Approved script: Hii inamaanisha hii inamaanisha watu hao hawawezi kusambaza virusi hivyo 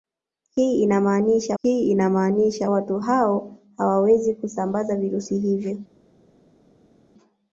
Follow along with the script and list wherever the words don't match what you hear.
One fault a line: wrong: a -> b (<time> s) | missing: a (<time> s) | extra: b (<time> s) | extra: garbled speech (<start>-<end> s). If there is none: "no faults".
no faults